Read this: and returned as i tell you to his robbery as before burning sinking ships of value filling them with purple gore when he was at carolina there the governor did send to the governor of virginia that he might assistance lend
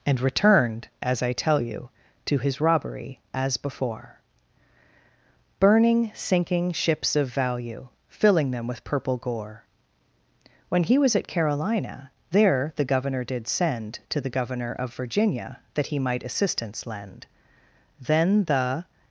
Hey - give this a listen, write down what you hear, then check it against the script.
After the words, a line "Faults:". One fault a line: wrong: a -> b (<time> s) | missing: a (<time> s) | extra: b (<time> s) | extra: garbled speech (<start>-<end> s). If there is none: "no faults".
and returned as i tell you to his robbery as before burning sinking ships of value filling them with purple gore when he was at carolina there the governor did send to the governor of virginia that he might assistance lend then the
Faults:
extra: then the (18.0 s)